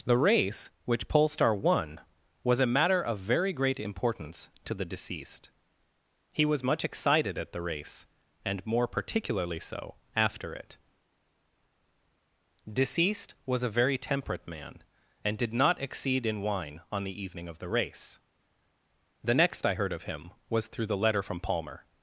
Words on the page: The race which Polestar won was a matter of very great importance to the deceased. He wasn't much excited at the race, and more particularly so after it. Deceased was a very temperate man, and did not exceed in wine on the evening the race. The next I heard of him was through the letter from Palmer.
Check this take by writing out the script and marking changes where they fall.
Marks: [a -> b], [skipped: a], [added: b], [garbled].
The race which Polestar won was a matter of very great importance to the deceased. He [wasn't -> was] much excited at the race, and more particularly so after it. Deceased was a very temperate man, and did not exceed in wine on the evening [added: of] the race. The next I heard of him was through the letter from Palmer.